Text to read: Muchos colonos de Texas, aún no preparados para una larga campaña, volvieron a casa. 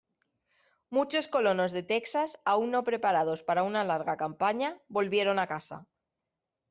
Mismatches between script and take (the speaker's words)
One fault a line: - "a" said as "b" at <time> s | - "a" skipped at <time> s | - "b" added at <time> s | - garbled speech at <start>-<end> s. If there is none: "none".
none